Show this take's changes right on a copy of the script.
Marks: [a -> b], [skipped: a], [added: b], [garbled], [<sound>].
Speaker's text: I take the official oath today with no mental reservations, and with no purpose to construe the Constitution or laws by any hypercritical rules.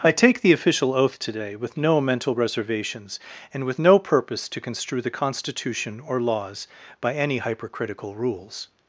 I take the official oath today with no mental reservations, and with no purpose to construe the Constitution or laws by any hypercritical rules.